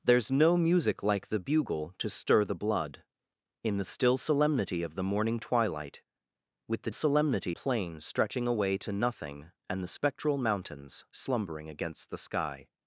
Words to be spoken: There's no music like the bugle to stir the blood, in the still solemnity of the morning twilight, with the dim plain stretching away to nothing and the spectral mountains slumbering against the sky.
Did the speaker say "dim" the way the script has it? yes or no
no